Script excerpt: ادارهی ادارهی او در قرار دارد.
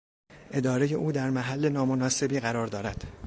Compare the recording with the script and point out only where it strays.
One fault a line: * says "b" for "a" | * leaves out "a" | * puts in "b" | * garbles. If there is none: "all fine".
* leaves out "ادارهی"
* puts in "محل نامناسبی"